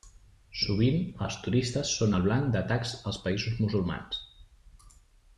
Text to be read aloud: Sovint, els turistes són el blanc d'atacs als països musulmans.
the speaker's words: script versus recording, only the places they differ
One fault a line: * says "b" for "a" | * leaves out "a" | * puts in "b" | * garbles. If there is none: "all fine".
all fine